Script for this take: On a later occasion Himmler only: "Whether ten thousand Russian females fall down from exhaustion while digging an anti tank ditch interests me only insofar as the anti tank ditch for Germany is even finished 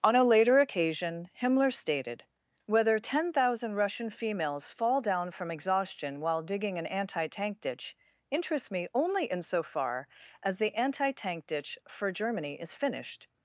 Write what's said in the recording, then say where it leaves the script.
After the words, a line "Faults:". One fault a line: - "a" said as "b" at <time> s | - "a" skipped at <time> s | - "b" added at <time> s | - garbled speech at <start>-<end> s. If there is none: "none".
On a later occasion Himmler stated: "Whether ten thousand Russian females fall down from exhaustion while digging an anti tank ditch interests me only insofar as the anti tank ditch for Germany is finished
Faults:
- "only" said as "stated" at 1.7 s
- "even" skipped at 12.7 s